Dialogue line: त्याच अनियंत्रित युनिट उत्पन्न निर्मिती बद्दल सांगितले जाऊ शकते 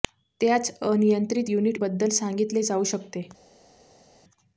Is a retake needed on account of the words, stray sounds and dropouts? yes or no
yes